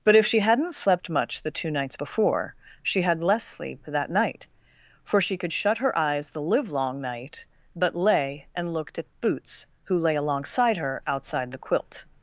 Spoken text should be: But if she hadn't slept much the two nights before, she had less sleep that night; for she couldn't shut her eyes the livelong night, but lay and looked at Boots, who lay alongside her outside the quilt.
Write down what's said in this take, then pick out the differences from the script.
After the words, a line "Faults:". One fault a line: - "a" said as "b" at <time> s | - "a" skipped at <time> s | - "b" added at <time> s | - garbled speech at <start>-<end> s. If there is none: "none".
But if she hadn't slept much the two nights before, she had less sleep that night; for she could shut her eyes the livelong night, but lay and looked at Boots, who lay alongside her outside the quilt.
Faults:
- "couldn't" said as "could" at 5.4 s